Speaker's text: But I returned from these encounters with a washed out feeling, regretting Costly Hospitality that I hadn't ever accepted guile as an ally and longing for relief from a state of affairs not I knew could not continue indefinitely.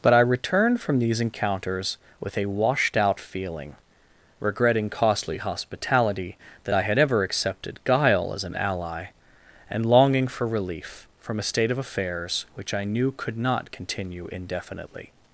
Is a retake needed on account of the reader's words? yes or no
yes